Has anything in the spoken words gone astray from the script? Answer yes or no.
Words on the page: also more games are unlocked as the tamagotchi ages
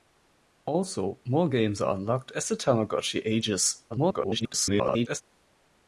yes